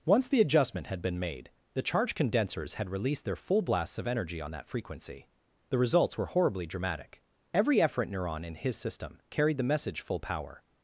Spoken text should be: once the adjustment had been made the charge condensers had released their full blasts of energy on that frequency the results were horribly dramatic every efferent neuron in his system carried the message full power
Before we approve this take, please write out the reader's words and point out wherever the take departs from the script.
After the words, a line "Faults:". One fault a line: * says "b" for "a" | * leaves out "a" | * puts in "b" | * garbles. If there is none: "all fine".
once the adjustment had been made the charge condensers had released their full blasts of energy on that frequency the results were horribly dramatic every efferent neuron in his system carried the message full power
Faults:
all fine